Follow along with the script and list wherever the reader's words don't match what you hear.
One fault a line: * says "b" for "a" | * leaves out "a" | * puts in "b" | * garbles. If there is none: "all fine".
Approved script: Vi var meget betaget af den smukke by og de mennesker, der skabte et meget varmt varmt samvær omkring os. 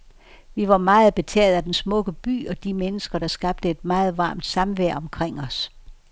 * leaves out "varmt"